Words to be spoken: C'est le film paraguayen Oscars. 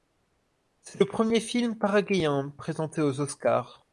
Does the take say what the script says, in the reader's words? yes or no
no